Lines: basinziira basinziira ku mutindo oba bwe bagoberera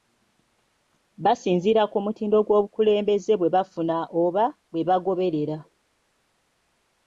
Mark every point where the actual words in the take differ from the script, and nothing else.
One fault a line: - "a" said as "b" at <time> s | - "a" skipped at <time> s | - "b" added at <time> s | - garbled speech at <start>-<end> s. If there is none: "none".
- "basinziira" skipped at 1.8 s
- "gw'obukulembeze bwe bafuna" added at 2.5 s